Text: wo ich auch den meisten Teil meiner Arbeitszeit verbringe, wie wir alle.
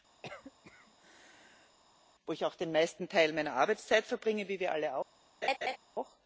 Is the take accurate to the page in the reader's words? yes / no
yes